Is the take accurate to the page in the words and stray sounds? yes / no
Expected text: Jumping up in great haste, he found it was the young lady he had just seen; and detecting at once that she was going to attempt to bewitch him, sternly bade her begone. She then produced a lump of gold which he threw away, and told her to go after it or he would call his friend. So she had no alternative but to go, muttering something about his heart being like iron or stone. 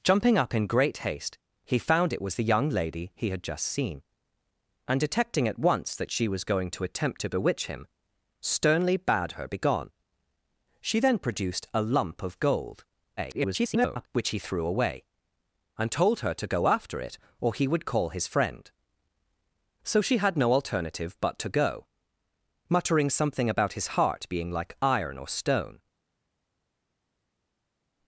no